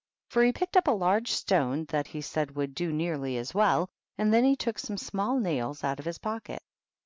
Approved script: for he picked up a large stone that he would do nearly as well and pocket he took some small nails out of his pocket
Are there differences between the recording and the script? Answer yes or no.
yes